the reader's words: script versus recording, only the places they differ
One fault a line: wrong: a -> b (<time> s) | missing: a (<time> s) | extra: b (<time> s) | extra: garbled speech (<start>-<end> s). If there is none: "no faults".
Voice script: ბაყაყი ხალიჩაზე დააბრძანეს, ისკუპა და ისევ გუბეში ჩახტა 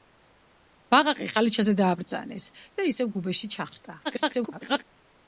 missing: ისკუპა (2.5 s)
extra: garbled speech (4.0-4.8 s)